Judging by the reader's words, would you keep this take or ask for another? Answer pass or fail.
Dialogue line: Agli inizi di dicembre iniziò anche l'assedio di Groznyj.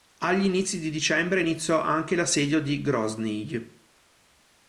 pass